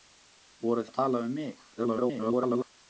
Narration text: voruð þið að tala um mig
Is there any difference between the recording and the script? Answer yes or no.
yes